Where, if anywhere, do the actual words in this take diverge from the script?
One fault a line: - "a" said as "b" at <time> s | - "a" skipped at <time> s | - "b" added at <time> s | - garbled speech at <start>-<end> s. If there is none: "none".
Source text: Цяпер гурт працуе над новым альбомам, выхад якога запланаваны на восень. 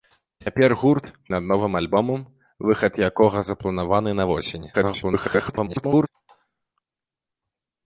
- "працуе" skipped at 1.1 s
- garbled speech at 4.7-6.1 s